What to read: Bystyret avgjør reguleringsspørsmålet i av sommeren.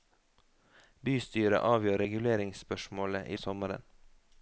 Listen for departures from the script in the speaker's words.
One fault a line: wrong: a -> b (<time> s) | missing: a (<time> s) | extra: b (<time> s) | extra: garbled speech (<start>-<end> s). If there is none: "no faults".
no faults